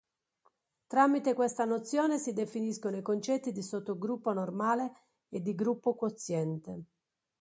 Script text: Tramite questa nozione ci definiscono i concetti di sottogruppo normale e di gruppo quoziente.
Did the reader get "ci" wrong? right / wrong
wrong